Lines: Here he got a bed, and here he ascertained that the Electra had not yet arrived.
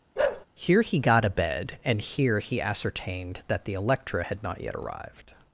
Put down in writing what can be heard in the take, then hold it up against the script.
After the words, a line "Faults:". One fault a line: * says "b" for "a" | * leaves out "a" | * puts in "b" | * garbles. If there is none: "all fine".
Here he got a bed, and here he ascertained that the Electra had not yet arrived.
Faults:
all fine